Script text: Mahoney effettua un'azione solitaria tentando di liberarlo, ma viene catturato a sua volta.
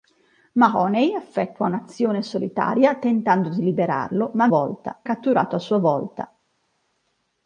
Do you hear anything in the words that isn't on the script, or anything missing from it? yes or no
yes